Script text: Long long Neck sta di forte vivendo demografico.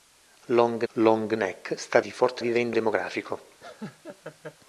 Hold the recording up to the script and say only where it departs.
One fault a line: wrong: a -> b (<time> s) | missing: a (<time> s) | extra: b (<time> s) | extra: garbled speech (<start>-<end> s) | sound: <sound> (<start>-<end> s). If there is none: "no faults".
sound: laugh (3.6-4.6 s)